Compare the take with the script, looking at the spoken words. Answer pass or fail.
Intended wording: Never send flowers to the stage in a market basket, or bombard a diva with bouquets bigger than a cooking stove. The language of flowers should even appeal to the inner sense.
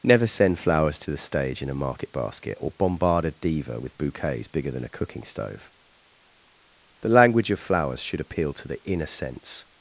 fail